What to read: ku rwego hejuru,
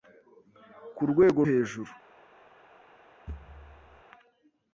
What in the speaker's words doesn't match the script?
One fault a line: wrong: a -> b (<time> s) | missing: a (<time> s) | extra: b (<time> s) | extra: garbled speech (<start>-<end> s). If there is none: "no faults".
no faults